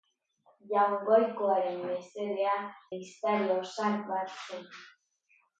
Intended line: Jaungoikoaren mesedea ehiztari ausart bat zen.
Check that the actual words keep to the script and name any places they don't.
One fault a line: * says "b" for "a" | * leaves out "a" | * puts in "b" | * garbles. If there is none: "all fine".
all fine